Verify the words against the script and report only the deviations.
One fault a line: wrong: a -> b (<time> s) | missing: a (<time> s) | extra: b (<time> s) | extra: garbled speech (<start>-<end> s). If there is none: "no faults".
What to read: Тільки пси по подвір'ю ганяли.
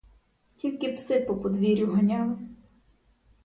no faults